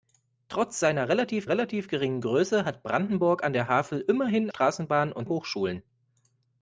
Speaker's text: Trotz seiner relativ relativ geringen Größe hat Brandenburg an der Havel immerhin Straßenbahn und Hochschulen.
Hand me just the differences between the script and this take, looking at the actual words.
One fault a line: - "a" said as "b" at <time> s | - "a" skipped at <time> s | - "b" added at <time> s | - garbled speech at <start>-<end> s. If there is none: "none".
none